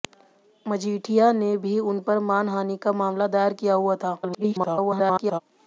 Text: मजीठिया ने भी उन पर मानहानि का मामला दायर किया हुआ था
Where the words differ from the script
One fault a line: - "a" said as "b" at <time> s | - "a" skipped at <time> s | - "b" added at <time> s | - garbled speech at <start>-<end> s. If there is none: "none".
- garbled speech at 4.2-5.4 s